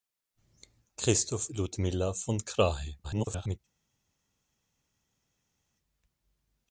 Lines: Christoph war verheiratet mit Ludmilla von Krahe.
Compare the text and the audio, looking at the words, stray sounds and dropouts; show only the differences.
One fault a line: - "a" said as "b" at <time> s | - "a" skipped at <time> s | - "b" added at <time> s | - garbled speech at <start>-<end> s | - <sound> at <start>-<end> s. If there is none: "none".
- "war verheiratet mit" skipped at 1.5 s
- garbled speech at 3.0-3.6 s